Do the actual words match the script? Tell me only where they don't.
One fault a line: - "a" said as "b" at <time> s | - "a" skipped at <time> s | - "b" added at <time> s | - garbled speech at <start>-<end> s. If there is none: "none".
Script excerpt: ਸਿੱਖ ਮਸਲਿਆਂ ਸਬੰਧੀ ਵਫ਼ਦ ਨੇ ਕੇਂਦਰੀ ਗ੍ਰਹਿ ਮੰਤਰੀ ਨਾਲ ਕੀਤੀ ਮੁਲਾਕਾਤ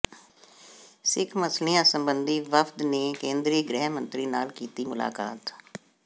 none